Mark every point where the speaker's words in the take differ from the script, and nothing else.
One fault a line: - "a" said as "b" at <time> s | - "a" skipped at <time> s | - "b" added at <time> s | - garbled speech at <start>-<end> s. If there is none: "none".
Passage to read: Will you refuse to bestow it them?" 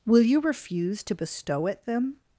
none